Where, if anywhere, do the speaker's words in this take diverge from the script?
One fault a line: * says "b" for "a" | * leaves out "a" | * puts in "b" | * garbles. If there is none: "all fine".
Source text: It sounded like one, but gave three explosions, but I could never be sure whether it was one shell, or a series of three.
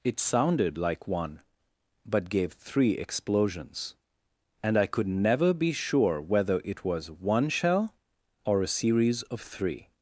* says "and" for "but"